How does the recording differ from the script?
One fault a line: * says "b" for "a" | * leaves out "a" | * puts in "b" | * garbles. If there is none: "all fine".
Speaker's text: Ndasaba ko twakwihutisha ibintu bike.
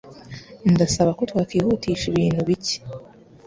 all fine